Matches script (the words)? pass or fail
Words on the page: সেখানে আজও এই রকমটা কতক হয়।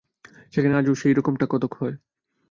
fail